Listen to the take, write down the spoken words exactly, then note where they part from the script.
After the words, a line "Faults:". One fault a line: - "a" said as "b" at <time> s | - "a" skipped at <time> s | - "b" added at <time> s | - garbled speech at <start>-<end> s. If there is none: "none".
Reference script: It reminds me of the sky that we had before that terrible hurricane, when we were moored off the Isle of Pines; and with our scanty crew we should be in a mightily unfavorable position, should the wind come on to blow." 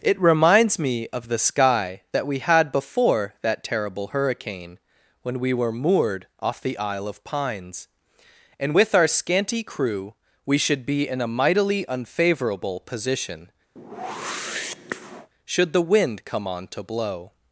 It reminds me of the sky that we had before that terrible hurricane, when we were moored off the Isle of Pines; and with our scanty crew we should be in a mightily unfavorable position, should the wind come on to blow."
Faults:
none